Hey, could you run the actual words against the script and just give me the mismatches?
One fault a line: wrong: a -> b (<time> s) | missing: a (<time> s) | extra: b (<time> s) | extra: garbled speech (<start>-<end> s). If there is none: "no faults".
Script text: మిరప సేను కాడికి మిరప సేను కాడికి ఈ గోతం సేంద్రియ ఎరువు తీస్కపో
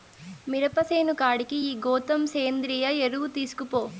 missing: మిరప సేను కాడికి (1.6 s)